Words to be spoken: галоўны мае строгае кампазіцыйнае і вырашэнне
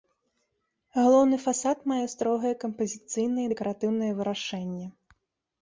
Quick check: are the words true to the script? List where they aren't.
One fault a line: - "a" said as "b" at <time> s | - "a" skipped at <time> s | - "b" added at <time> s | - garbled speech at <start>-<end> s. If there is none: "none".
- "фасад" added at 1.4 s
- "дэкаратыўнае" added at 3.5 s